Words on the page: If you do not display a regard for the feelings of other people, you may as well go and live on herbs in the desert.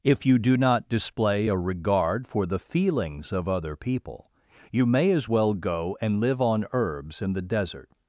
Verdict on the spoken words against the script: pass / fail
pass